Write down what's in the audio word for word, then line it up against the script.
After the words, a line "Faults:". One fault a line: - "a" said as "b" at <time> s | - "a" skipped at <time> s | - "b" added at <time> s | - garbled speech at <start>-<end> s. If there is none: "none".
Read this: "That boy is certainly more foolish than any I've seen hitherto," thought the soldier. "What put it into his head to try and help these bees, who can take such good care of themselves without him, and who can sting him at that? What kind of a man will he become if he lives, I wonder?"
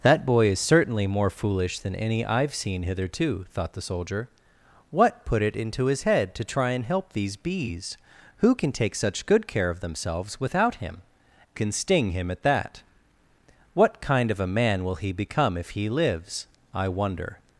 "That boy is certainly more foolish than any I've seen hitherto," thought the soldier. "What put it into his head to try and help these bees, who can take such good care of themselves without him, can sting him at that? What kind of a man will he become if he lives, I wonder?"
Faults:
- "and who" skipped at 11.0 s